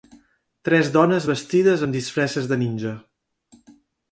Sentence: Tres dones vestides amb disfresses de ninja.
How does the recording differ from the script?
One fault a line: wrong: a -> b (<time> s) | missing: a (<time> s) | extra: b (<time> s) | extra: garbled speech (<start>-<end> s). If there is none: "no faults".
no faults